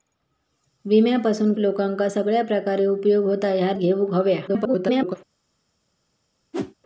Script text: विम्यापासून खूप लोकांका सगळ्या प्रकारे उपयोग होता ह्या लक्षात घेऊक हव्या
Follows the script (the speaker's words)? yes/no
no